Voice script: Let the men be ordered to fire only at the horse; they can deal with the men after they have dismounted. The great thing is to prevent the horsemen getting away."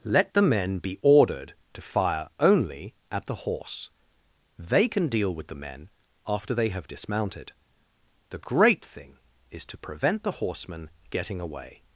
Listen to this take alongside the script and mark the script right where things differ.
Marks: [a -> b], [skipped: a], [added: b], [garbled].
Let the men be ordered to fire only at the horse; they can deal with the men after they have dismounted. The great thing is to prevent the horsemen getting away."